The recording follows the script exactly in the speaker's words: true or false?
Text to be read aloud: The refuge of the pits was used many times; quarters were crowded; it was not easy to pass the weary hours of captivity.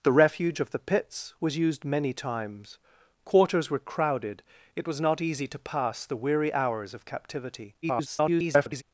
false